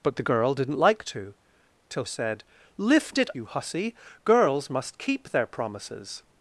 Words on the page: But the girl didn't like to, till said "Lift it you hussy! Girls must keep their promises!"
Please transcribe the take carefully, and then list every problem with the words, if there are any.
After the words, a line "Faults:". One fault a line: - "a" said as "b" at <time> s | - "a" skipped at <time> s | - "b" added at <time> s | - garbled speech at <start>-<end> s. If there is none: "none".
But the girl didn't like to, till said "Lift it you hussy! Girls must keep their promises!"
Faults:
none